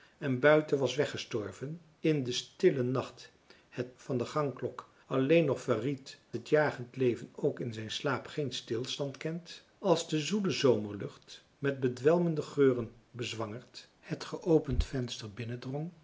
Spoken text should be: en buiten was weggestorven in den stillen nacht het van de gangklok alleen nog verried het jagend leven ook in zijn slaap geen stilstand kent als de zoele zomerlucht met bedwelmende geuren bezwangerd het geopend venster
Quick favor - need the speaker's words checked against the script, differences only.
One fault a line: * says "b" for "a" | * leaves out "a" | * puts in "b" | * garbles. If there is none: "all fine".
all fine